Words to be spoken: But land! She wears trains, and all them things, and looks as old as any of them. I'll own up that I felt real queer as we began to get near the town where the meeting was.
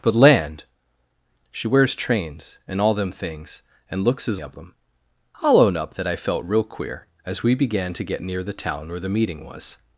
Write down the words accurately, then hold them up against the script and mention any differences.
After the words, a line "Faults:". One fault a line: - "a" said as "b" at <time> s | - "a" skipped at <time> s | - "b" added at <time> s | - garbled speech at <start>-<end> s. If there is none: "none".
But land! She wears trains, and all them things, and looks as of them. I'll own up that I felt real queer as we began to get near the town where the meeting was.
Faults:
- "old as any" skipped at 4.4 s